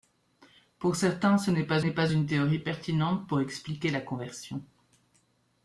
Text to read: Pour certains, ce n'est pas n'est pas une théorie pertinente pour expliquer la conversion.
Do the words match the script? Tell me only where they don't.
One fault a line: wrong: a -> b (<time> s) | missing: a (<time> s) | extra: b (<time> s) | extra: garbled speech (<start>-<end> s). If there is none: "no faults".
no faults